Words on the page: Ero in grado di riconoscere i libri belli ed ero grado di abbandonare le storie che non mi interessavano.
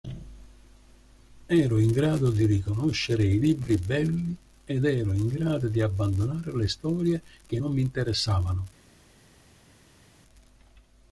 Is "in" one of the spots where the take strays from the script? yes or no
no